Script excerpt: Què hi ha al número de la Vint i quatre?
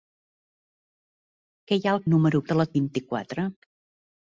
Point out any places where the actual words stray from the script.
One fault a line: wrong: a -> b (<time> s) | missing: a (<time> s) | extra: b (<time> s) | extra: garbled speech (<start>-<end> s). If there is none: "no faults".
no faults